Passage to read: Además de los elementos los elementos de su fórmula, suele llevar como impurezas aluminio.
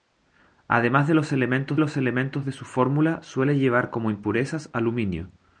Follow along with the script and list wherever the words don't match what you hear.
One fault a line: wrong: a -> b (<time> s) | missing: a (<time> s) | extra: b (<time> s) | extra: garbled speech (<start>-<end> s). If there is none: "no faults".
no faults